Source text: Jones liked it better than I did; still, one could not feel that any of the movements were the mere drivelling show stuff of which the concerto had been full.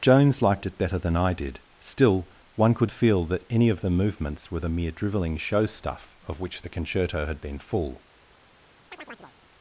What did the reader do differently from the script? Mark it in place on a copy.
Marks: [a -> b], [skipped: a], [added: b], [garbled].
Jones liked it better than I did; still, one could [skipped: not] feel that any of the movements were the mere drivelling show stuff of which the concerto had been full.